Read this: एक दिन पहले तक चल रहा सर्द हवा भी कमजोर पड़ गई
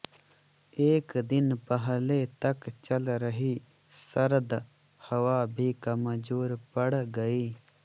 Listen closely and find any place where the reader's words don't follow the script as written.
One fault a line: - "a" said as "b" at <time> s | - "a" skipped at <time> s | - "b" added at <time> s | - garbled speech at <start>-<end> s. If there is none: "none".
- "रहा" said as "रही" at 3.2 s